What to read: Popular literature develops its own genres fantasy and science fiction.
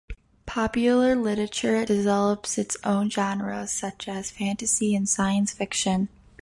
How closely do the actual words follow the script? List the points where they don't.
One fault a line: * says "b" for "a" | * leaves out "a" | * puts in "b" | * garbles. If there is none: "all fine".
* puts in "such as"